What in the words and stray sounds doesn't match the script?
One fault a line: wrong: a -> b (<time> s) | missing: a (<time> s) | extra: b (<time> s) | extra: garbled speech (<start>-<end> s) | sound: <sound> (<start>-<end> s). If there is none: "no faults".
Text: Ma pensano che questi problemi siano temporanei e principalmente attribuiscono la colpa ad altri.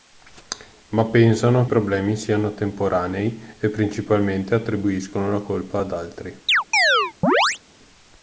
missing: che questi (1.6 s)
sound: chirp (6.5-7.6 s)